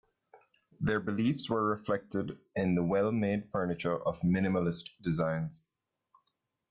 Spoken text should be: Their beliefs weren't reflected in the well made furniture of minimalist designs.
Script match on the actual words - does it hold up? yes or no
no